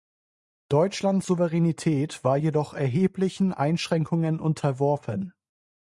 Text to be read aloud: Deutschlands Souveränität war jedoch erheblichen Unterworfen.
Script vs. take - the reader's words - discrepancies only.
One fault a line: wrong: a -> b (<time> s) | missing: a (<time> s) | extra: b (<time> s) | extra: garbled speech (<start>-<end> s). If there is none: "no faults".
extra: Einschränkungen (3.5 s)